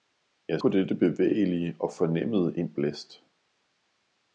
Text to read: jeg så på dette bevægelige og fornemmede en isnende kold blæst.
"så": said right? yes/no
no